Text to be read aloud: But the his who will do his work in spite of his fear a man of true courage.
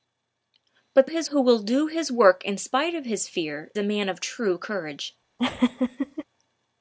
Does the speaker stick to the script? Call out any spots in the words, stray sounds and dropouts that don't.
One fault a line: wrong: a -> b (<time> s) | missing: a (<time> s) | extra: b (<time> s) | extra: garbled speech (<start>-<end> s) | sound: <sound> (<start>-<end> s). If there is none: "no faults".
sound: laugh (5.4-6.2 s)